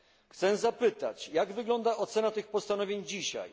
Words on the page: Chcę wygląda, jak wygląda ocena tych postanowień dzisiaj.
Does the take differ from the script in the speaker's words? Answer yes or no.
yes